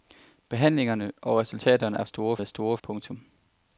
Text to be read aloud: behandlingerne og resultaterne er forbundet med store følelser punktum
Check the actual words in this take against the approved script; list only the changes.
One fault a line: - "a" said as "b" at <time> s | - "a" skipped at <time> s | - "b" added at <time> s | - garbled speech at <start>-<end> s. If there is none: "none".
- "forbundet" said as "store" at 2.0 s
- "følelser" skipped at 2.8 s